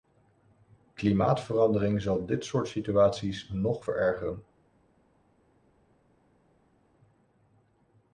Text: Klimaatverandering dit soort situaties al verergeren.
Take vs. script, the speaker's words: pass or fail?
fail